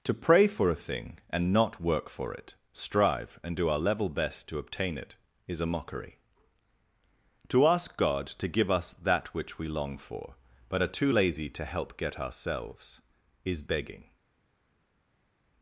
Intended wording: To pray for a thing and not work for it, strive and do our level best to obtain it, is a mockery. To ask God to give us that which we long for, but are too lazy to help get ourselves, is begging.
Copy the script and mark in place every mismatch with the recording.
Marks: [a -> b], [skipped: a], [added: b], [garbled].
To pray for a thing and not work for it, strive and do our level best to obtain it, is a mockery. To ask God to give us that which we long for, but are too lazy to help get ourselves, is begging.